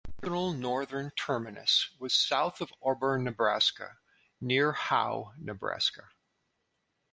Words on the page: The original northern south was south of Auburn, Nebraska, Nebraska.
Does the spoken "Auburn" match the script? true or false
true